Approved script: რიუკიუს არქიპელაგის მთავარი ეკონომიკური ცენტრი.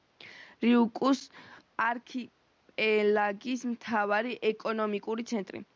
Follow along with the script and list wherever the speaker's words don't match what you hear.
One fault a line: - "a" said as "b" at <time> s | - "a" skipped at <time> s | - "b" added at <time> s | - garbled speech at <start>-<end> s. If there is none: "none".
none